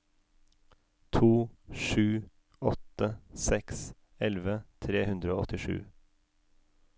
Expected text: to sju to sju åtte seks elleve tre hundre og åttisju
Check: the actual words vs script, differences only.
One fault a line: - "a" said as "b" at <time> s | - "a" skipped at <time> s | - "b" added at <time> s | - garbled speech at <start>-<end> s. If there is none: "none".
- "to sju" skipped at 2.2 s